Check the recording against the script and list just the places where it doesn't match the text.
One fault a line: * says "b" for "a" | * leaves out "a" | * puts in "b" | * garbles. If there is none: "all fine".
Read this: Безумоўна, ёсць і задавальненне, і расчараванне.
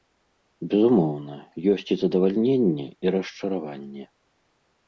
all fine